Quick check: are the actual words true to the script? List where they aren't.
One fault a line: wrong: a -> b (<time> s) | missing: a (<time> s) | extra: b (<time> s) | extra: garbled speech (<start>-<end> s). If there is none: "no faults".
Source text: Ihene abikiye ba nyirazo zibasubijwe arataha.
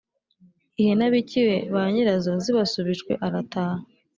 no faults